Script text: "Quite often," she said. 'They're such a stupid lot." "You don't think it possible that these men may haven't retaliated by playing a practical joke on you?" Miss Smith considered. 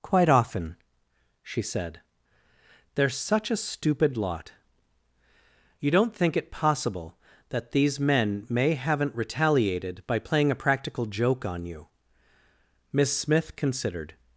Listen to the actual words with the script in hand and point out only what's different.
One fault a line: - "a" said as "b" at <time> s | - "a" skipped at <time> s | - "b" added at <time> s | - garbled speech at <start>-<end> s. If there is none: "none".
none